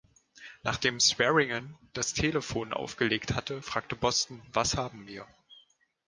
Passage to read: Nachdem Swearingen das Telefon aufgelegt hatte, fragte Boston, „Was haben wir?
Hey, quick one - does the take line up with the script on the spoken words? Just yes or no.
yes